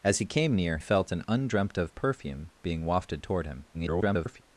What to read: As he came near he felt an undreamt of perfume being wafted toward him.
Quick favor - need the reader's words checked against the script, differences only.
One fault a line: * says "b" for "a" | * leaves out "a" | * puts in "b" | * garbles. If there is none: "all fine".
* leaves out "he"
* garbles